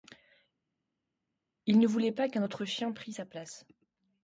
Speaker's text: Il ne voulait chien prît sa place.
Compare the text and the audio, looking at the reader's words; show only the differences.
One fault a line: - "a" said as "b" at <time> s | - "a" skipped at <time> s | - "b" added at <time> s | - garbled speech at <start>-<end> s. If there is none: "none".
- "pas qu'un autre" added at 2.1 s